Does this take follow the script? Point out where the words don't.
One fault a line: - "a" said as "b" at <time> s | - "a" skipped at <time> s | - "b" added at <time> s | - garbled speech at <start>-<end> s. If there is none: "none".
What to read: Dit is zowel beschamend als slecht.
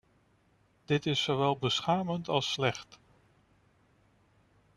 none